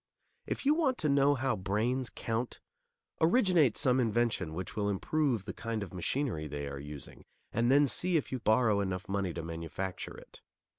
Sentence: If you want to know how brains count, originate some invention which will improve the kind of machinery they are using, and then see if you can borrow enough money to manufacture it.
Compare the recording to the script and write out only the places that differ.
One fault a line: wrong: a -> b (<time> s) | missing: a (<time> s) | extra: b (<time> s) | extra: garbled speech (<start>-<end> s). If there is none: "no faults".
missing: can (8.4 s)